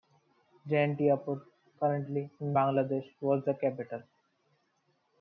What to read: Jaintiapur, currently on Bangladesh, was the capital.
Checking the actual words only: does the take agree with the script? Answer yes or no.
no